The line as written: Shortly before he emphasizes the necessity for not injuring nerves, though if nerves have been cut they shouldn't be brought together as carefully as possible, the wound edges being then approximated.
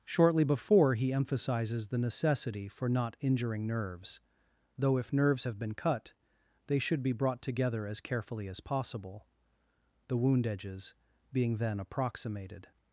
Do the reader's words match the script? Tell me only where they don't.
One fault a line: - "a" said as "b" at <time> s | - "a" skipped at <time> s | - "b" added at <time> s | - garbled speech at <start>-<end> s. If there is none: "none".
- "shouldn't" said as "should" at 6.8 s